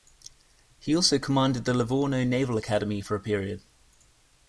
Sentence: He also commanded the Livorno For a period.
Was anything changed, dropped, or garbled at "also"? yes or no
no